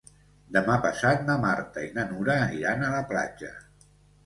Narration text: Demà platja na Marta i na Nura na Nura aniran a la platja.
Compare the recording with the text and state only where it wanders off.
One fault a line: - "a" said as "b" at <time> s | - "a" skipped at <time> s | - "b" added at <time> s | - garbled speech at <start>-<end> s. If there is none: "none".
- "platja" said as "passat" at 0.9 s
- "na Nura" skipped at 2.4 s